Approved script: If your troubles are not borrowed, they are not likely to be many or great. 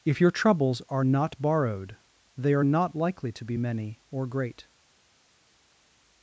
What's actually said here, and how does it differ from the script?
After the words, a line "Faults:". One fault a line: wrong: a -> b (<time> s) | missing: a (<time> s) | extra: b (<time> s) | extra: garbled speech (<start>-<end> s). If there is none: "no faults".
If your troubles are not borrowed, they are not likely to be many or great.
Faults:
no faults